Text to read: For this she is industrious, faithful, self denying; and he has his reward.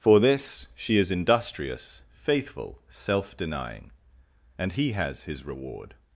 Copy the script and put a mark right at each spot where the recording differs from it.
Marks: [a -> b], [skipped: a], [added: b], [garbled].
For this she is industrious, faithful, self denying; and he has his reward.